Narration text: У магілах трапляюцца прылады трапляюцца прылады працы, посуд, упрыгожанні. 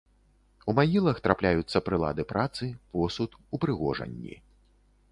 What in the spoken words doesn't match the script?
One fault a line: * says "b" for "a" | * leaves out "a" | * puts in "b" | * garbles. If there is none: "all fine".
* leaves out "трапляюцца прылады"